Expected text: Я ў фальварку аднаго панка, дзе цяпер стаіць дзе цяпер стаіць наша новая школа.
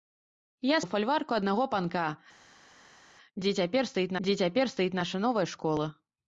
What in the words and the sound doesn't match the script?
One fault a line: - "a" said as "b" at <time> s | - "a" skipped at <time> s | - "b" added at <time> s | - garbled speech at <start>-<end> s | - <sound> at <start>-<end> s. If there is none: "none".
none